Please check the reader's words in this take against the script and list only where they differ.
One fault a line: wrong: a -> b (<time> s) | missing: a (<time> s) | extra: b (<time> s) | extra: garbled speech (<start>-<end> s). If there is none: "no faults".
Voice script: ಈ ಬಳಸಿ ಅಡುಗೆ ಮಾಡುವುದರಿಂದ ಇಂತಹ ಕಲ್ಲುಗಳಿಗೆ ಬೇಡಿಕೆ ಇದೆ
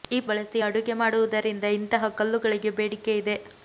no faults